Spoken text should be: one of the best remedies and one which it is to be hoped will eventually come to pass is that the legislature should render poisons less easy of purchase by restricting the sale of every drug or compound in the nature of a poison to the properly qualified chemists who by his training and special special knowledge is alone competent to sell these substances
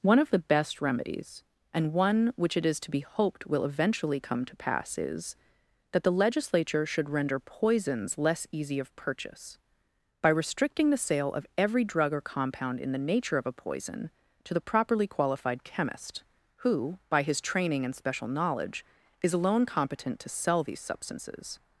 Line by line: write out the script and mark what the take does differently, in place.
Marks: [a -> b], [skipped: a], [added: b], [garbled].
one of the best remedies and one which it is to be hoped will eventually come to pass is that the legislature should render poisons less easy of purchase by restricting the sale of every drug or compound in the nature of a poison to the properly qualified [chemists -> chemist] who by his training and special [skipped: special] knowledge is alone competent to sell these substances